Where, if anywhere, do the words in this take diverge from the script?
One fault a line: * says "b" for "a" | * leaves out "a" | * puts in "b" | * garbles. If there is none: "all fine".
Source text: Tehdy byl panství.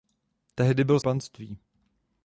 all fine